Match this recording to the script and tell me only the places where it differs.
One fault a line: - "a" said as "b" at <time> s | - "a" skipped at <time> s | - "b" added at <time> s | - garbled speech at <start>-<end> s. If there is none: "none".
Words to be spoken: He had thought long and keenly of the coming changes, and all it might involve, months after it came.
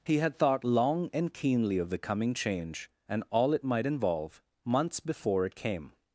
- "changes" said as "change" at 2.3 s
- "after" said as "before" at 5.0 s